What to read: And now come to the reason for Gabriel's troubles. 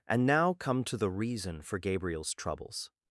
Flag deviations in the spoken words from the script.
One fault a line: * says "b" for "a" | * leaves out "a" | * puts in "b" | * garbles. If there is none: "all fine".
all fine